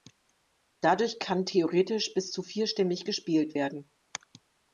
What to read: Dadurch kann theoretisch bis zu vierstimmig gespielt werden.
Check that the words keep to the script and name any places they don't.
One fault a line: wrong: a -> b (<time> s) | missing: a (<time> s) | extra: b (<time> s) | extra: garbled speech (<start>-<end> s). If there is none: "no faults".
no faults